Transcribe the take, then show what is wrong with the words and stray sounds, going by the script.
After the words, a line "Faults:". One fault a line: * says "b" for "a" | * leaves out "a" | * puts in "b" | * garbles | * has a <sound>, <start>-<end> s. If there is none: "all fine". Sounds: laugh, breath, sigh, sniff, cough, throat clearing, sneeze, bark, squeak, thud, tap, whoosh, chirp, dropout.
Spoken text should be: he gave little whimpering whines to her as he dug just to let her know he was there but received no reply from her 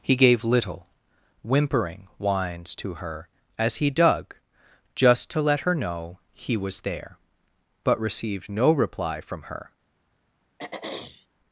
he gave little whimpering whines to her as he dug just to let her know he was there but received no reply from her
Faults:
* has a throat clearing, 10.6-11.3 s